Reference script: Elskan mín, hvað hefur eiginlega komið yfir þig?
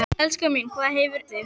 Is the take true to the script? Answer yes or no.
no